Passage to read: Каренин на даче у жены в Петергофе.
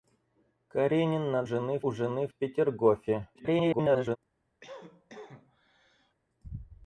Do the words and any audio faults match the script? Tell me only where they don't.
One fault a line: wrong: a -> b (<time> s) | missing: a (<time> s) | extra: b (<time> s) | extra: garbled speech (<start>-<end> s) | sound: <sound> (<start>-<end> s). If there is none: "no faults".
wrong: даче -> жены (1.4 s)
extra: garbled speech (3.4-4.2 s)
sound: cough (4.6-6.1 s)